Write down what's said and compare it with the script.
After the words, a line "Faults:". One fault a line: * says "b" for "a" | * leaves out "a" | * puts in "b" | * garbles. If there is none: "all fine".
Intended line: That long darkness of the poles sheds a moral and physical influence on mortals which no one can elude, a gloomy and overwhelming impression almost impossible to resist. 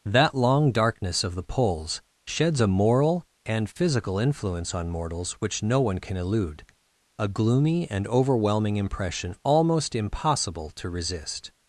That long darkness of the poles sheds a moral and physical influence on mortals which no one can elude, a gloomy and overwhelming impression almost impossible to resist.
Faults:
all fine